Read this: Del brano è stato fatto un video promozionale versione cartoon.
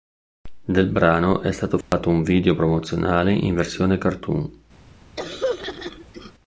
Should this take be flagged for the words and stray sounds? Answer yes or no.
yes